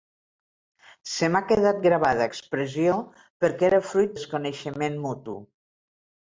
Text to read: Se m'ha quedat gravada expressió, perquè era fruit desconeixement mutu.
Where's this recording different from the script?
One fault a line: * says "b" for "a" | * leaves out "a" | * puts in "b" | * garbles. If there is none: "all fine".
all fine